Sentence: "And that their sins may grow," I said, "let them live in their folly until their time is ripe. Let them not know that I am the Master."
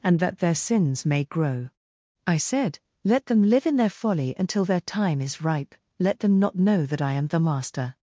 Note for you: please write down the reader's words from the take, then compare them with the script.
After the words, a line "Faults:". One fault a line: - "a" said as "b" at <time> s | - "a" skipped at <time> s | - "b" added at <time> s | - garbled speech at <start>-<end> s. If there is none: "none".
"And that their sins may grow," I said, "let them live in their folly until their time is ripe. Let them not know that I am the Master."
Faults:
none